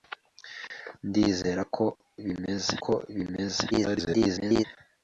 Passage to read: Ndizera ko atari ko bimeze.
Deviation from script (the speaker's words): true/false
true